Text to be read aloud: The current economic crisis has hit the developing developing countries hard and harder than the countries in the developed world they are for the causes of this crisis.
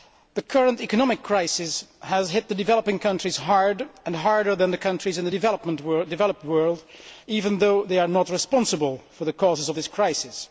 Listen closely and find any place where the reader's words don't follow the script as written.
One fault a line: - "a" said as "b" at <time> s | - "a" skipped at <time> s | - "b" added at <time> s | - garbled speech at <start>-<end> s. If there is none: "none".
- "developing" skipped at 3.0 s
- "even though" added at 7.3 s
- "not responsible" added at 8.1 s